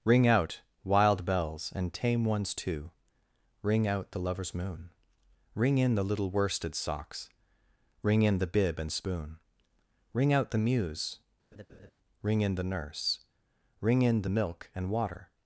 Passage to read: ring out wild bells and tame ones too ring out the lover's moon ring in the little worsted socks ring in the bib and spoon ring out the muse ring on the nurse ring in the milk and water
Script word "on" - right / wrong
wrong